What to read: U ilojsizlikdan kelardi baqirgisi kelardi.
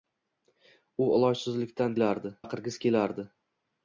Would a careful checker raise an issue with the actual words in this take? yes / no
no